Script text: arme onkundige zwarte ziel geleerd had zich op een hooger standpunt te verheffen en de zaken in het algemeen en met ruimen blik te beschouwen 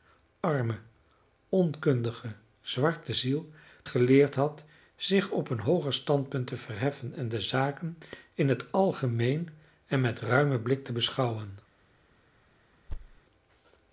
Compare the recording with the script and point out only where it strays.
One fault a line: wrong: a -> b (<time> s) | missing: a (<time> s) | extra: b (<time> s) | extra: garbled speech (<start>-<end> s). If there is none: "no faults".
no faults